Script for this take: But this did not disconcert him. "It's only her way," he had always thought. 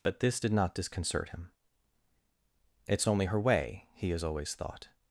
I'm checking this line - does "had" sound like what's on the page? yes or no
no